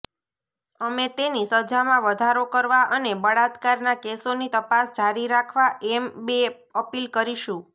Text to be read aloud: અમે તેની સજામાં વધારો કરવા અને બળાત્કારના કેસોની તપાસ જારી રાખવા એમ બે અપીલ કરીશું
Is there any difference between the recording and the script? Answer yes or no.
no